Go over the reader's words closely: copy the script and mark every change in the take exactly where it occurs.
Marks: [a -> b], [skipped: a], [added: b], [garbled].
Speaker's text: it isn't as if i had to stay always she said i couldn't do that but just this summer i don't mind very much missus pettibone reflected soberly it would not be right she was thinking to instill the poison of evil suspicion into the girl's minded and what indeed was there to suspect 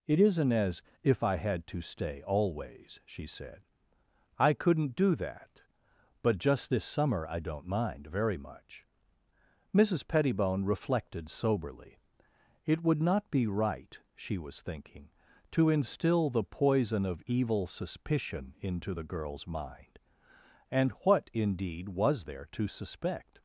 it isn't as if i had to stay always she said i couldn't do that but just this summer i don't mind very much missus pettibone reflected soberly it would not be right she was thinking to instill the poison of evil suspicion into the girl's [minded -> mind] and what indeed was there to suspect